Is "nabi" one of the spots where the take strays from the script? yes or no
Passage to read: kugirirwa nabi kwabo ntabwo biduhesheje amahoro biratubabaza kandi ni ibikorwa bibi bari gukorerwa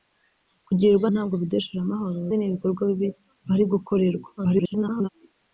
yes